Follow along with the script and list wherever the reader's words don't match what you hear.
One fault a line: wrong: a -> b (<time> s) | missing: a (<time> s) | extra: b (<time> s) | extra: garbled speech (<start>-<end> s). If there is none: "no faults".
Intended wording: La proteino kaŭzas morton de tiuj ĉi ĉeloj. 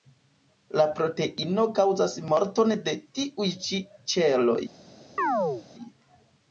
no faults